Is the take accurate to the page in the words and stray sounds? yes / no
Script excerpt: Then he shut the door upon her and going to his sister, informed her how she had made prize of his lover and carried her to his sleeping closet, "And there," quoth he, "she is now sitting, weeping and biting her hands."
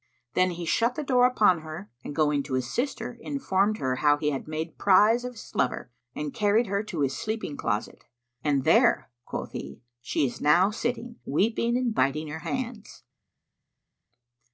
no